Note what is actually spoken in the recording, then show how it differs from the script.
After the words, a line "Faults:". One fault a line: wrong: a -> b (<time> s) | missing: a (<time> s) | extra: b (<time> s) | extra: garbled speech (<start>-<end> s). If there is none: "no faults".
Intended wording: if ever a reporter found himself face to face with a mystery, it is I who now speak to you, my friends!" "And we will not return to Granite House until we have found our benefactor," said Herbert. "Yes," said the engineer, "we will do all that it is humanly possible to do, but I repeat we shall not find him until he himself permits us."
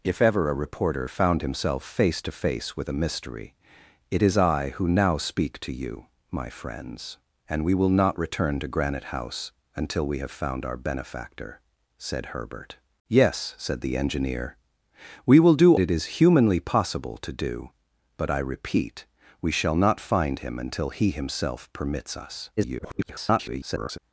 if ever a reporter found himself face to face with a mystery, it is I who now speak to you, my friends!" "And we will not return to Granite House until we have found our benefactor," said Herbert. "Yes," said the engineer, "we will do it is humanly possible to do, but I repeat we shall not find him until he himself permits us." [garbled]
Faults:
missing: all that (15.8 s)
extra: garbled speech (22.6-24.0 s)